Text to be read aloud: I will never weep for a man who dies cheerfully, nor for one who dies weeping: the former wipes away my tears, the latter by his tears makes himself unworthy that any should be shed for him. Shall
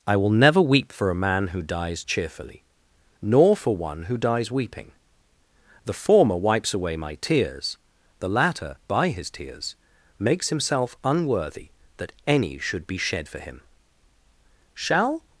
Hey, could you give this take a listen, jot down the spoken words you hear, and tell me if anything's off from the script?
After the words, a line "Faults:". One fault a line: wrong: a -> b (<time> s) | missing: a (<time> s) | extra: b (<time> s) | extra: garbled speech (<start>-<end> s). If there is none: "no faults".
I will never weep for a man who dies cheerfully, nor for one who dies weeping: the former wipes away my tears, the latter by his tears makes himself unworthy that any should be shed for him. Shall
Faults:
no faults